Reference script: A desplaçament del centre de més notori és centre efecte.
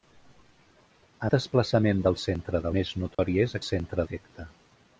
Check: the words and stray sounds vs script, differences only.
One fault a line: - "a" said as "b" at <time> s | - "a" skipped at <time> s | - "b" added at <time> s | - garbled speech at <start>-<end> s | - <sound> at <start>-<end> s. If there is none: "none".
- dropout at 3.1-3.2 s